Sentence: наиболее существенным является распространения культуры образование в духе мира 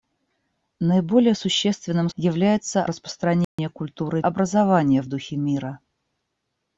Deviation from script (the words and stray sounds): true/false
true